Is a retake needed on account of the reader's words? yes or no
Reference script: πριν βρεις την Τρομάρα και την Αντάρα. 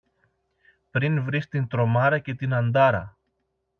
no